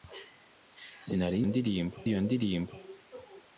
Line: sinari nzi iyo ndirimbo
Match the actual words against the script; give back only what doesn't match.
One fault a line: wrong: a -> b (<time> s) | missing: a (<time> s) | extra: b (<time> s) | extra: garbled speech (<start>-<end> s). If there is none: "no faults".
wrong: nzi -> ndirimbo (1.5 s)